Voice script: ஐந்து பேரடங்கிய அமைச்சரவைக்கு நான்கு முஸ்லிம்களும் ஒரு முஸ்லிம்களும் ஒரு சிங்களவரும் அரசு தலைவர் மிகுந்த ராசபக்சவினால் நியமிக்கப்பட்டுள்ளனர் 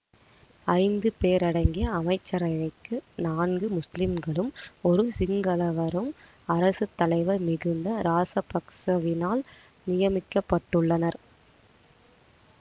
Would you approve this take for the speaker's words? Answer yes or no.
no